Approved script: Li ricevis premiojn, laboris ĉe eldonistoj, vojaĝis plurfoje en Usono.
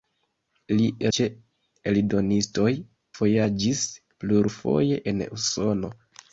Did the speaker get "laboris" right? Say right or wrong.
wrong